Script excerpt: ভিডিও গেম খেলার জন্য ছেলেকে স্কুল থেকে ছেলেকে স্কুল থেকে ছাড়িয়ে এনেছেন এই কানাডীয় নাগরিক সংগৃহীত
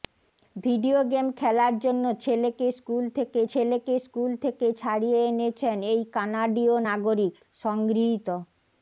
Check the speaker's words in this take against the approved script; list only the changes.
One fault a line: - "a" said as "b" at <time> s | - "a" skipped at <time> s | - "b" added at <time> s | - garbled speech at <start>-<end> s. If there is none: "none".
none